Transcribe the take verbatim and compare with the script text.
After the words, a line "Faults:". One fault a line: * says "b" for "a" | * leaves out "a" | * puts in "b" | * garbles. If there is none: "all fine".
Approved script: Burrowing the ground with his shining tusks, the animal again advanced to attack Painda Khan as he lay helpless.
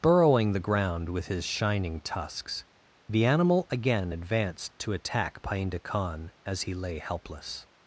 Burrowing the ground with his shining tusks, the animal again advanced to attack Painda Khan as he lay helpless.
Faults:
all fine